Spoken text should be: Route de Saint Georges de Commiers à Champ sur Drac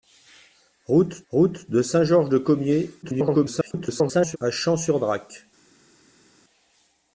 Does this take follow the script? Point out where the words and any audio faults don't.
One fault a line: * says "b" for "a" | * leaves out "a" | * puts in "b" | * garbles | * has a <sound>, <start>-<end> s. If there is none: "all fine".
* puts in "route"
* garbles